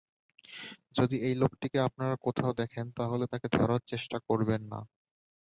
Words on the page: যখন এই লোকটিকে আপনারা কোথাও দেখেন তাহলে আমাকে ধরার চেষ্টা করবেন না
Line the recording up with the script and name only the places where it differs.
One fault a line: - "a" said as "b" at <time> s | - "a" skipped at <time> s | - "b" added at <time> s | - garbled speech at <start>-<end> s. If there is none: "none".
- "যখন" said as "যদি" at 1.0 s
- "আমাকে" said as "তাকে" at 3.3 s